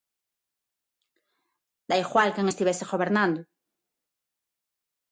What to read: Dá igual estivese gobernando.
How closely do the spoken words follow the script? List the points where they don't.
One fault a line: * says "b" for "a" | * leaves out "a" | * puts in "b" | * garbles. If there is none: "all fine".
* puts in "quen"